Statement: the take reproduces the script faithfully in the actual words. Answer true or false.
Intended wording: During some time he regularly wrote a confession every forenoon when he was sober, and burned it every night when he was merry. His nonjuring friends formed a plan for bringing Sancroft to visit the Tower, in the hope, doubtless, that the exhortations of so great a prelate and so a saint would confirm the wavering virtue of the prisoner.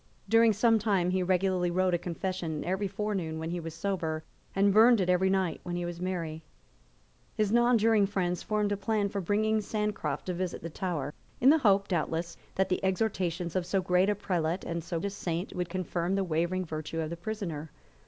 true